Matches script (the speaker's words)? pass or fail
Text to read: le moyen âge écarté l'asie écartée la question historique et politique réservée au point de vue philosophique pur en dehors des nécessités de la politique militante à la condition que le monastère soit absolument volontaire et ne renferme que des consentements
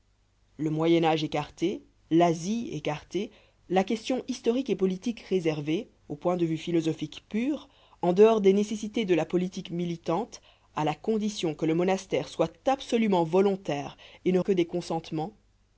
fail